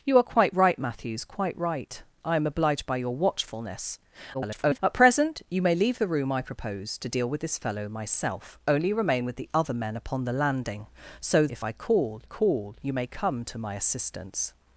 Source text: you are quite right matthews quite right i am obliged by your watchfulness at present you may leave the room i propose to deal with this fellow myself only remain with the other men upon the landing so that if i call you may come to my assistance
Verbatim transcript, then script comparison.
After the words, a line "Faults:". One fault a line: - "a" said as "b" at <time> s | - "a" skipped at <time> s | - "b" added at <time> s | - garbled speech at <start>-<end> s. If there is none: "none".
you are quite right matthews quite right i am obliged by your watchfulness [garbled] at present you may leave the room i propose to deal with this fellow myself only remain with the other men upon the landing so if i call call you may come to my assistance
Faults:
- garbled speech at 4.3-4.8 s
- "that" skipped at 11.5 s
- "call" added at 12.2 s